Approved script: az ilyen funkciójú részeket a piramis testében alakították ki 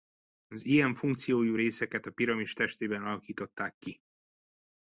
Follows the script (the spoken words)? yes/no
yes